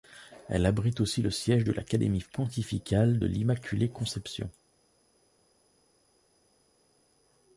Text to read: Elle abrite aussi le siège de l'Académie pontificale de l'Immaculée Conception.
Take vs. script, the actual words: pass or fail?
pass